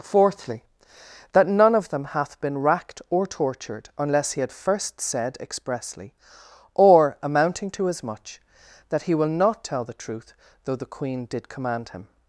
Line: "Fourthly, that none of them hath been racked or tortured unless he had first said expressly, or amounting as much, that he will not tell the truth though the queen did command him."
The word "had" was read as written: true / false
true